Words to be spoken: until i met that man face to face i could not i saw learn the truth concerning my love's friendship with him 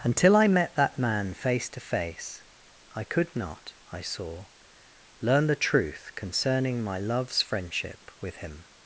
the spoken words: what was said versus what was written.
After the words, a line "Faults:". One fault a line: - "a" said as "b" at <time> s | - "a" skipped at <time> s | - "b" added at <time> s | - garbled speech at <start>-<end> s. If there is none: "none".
until i met that man face to face i could not i saw learn the truth concerning my love's friendship with him
Faults:
none